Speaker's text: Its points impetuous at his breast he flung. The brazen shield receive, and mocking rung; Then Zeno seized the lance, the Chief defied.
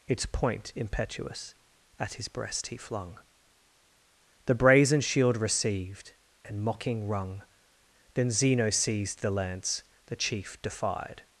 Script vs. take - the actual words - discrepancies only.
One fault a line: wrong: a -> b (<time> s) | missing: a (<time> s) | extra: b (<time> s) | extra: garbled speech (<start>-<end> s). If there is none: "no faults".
wrong: points -> point (0.2 s)
wrong: receive -> received (5.4 s)